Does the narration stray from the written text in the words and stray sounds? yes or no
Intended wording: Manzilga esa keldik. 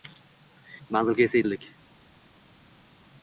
no